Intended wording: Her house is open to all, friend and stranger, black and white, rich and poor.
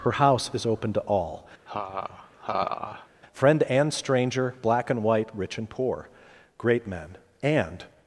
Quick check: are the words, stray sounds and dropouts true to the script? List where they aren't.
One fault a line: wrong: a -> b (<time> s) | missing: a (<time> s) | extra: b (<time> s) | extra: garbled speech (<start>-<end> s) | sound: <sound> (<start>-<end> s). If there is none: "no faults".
sound: laugh (1.7-3.1 s)
extra: Great men and (6.6 s)